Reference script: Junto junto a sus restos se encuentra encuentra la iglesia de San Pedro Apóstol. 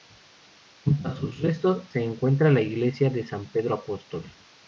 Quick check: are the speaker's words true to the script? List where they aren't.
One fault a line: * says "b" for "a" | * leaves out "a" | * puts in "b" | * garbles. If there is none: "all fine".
* leaves out "junto"
* leaves out "encuentra"